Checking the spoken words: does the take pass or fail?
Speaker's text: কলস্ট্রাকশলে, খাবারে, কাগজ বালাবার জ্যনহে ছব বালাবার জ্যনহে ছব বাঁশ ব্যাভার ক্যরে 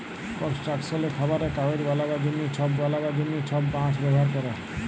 pass